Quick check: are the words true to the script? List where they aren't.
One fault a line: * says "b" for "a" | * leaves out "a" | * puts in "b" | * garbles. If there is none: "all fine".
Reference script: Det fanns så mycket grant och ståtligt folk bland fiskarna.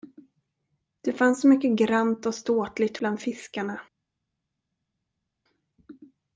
* leaves out "folk"